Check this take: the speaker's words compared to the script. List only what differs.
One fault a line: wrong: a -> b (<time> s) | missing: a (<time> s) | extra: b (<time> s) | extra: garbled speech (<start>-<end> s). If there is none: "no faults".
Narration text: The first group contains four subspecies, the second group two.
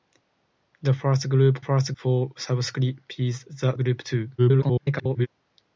wrong: contains -> first (1.6 s)
missing: second (3.8 s)
extra: garbled speech (4.4-5.3 s)